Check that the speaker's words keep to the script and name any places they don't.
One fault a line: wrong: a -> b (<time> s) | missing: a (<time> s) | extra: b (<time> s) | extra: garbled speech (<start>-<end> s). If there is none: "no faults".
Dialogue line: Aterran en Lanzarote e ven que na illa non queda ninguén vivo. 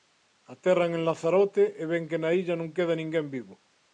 no faults